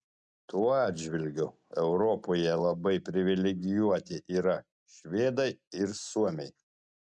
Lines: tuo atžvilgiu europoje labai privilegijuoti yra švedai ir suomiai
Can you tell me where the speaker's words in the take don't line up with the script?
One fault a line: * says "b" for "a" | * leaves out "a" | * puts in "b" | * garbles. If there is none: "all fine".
all fine